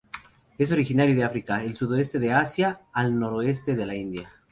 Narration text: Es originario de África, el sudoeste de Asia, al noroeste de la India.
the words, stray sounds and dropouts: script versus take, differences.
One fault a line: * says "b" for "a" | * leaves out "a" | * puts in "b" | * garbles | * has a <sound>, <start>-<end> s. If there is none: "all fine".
all fine